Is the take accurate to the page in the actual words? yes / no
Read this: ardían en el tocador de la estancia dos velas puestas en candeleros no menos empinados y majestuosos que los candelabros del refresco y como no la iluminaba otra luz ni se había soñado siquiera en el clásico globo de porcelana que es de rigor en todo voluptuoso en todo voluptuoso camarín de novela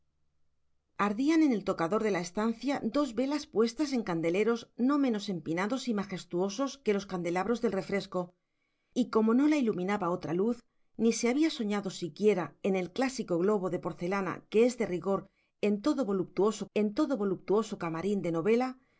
yes